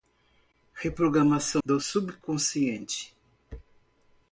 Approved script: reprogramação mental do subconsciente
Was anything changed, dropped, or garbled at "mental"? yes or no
yes